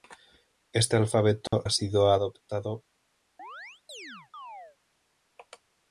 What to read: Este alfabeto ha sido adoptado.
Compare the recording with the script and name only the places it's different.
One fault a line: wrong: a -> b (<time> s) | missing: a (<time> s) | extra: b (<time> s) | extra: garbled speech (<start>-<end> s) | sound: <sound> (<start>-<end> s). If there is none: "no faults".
sound: dropout (1.5-1.5 s)
sound: chirp (3.4-4.8 s)